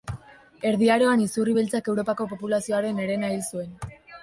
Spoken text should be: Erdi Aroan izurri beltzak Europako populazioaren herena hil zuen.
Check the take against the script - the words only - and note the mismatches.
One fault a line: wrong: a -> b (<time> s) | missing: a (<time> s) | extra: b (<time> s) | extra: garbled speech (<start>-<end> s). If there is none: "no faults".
no faults